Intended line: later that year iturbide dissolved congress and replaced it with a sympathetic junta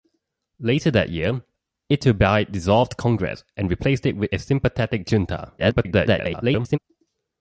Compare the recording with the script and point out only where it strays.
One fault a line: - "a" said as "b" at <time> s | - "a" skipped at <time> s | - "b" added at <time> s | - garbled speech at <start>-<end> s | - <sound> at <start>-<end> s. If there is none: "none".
- garbled speech at 5.6-6.8 s